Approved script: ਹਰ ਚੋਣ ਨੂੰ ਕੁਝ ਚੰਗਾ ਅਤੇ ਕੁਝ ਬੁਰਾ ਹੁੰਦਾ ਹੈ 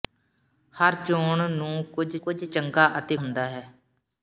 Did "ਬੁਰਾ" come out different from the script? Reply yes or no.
yes